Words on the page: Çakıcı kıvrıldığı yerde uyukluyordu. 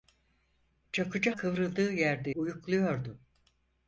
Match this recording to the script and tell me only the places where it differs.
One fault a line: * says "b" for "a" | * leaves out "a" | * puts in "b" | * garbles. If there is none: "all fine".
all fine